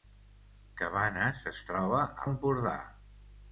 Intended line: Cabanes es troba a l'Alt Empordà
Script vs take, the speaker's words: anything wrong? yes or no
yes